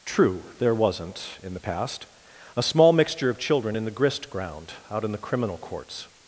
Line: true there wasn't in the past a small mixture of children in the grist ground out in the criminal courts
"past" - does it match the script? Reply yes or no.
yes